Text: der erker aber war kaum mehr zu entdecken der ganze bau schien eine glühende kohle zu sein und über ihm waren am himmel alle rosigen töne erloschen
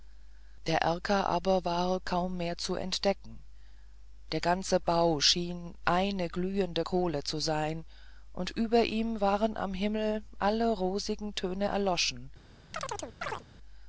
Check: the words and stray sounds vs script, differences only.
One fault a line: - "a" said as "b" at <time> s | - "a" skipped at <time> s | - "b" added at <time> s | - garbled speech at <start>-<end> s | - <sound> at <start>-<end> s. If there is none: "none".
- chirp at 12.7-13.4 s